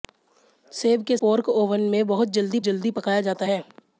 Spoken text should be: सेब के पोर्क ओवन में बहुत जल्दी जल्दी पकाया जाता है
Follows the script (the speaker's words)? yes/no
yes